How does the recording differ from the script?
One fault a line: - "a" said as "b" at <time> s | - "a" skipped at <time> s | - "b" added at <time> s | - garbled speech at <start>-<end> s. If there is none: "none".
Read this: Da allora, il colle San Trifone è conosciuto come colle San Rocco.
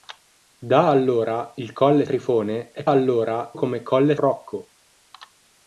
- "San" skipped at 2.1 s
- "conosciuto" said as "allora" at 2.9 s
- "San" skipped at 4.1 s